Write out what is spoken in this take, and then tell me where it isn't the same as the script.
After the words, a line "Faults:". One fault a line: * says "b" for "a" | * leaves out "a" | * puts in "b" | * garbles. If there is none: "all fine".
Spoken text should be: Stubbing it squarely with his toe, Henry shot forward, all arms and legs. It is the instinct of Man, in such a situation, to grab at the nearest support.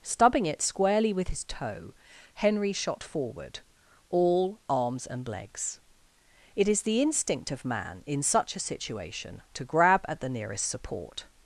Stubbing it squarely with his toe, Henry shot forward, all arms and legs. It is the instinct of Man, in such a situation, to grab at the nearest support.
Faults:
all fine